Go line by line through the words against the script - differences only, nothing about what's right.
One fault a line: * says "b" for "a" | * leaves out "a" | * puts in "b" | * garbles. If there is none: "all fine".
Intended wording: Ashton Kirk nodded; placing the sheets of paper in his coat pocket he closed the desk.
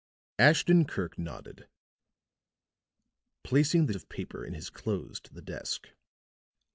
* leaves out "sheets"
* leaves out "coat pocket he"